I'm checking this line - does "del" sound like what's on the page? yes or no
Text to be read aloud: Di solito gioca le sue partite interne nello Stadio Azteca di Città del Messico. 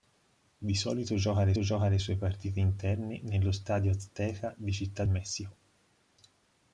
no